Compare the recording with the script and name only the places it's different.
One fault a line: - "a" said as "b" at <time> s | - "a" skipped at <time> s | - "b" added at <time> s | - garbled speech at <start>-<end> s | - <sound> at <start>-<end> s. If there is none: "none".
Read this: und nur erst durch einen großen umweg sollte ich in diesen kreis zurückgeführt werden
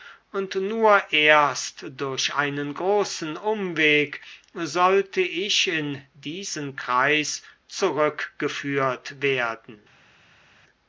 none